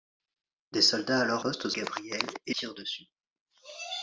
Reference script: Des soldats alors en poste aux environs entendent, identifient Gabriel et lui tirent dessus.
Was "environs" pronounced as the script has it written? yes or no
no